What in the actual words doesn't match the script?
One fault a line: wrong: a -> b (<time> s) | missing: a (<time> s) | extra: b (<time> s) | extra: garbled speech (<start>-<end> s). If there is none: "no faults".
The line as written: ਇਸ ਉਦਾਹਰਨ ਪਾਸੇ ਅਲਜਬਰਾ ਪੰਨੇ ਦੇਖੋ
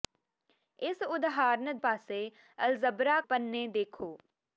no faults